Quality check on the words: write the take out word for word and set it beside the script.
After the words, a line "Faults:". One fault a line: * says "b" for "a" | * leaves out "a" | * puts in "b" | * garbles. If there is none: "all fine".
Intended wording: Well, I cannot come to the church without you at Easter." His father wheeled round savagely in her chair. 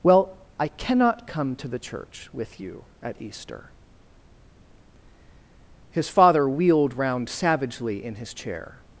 Well, I cannot come to the church with you at Easter." His father wheeled round savagely in his chair.
Faults:
* says "with" for "without"
* says "his" for "her"